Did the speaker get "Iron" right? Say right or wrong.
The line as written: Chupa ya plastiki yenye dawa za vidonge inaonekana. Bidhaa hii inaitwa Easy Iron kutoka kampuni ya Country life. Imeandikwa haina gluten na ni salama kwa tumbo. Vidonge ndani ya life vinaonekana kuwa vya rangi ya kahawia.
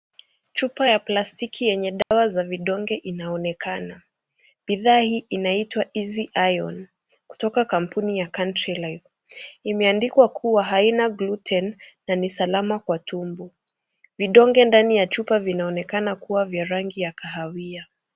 right